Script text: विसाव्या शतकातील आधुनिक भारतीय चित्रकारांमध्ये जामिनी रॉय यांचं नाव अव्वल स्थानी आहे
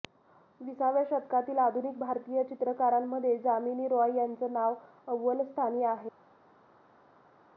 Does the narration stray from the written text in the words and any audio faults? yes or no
no